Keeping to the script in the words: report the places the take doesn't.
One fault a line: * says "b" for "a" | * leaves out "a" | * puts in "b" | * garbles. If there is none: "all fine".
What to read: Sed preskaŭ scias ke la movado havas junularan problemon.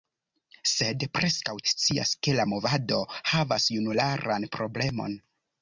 all fine